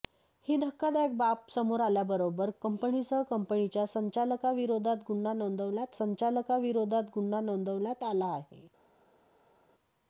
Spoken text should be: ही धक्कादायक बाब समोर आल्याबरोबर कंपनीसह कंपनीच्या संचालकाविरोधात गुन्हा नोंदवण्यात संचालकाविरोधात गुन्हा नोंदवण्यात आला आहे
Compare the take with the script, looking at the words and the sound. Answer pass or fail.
pass